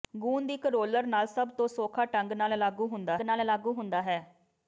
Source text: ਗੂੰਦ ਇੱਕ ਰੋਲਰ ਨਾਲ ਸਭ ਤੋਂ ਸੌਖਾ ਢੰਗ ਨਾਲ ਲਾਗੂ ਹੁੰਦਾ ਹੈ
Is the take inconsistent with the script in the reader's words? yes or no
yes